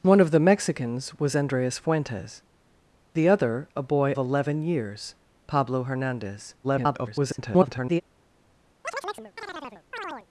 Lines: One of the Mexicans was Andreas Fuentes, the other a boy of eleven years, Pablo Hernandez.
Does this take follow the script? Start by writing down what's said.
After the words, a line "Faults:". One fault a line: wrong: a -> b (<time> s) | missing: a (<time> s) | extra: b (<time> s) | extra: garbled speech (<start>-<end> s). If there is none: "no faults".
One of the Mexicans was Andreas Fuentes, the other a boy eleven years, Pablo Hernandez. [garbled]
Faults:
missing: of (4.1 s)
extra: garbled speech (6.6-8.0 s)